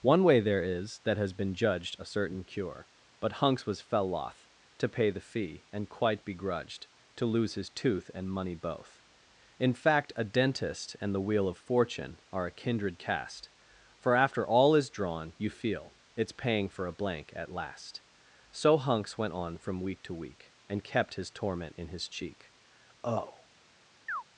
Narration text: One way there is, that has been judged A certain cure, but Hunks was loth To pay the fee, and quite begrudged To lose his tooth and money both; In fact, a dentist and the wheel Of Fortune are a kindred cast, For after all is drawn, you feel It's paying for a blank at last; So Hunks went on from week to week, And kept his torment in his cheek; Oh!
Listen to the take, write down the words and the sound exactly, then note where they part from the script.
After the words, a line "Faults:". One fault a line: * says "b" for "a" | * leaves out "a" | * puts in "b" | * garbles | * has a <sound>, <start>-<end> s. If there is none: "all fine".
One way there is, that has been judged A certain cure, but Hunks was fell loth To pay the fee, and quite begrudged To lose his tooth and money both; In fact, a dentist and the wheel Of Fortune are a kindred cast, For after all is drawn, you feel It's paying for a blank at last; So Hunks went on from week to week, And kept his torment in his cheek; Oh!
Faults:
* puts in "fell"
* has a chirp, 24.1-24.2 s